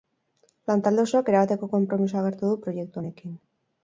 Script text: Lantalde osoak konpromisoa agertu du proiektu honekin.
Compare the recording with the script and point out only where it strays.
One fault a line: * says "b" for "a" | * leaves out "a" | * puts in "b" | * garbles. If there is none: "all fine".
* puts in "erabateko"